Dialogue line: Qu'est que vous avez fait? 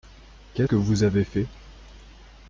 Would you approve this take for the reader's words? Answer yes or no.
yes